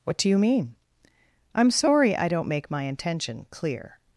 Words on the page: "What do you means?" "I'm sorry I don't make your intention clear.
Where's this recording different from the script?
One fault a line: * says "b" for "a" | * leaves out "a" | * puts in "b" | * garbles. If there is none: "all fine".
* says "mean" for "means"
* says "my" for "your"